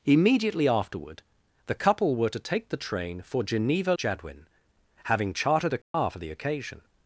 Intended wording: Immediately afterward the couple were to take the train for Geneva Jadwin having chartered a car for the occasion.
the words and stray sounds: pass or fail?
fail